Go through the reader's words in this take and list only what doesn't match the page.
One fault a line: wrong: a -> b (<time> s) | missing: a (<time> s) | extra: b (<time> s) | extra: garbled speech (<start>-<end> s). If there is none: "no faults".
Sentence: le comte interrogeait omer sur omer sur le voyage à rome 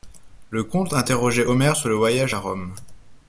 missing: omer sur (1.9 s)